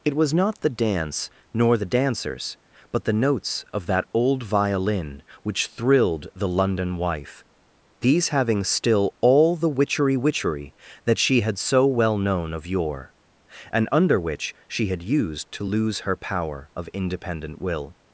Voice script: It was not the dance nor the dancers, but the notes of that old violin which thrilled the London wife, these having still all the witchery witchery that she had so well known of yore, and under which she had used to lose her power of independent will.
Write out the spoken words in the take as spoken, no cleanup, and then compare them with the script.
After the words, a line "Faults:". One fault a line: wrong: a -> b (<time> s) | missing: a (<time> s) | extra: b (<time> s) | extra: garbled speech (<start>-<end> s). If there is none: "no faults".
It was not the dance nor the dancers, but the notes of that old violin which thrilled the London wife, these having still all the witchery witchery that she had so well known of yore, and under which she had used to lose her power of independent will.
Faults:
no faults